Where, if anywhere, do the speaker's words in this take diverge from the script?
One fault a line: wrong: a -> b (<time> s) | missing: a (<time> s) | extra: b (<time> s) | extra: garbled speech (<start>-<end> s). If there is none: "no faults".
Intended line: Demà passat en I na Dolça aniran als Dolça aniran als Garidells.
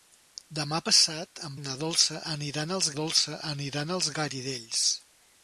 no faults